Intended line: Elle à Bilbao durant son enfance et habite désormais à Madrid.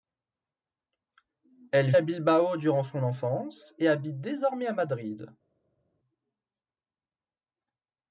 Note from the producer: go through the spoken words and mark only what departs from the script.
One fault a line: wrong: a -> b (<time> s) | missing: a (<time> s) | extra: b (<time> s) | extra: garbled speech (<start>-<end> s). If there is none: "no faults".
no faults